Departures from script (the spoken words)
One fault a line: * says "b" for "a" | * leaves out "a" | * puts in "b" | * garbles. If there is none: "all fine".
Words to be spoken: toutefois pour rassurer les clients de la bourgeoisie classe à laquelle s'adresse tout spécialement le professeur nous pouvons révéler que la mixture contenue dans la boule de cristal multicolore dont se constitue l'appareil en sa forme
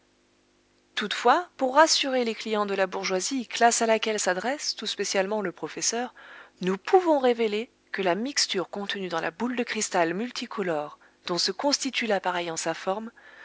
all fine